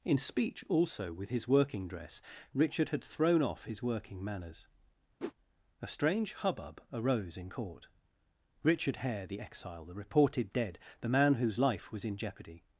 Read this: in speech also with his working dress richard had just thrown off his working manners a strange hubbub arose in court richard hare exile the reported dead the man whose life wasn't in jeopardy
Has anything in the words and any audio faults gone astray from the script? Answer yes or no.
yes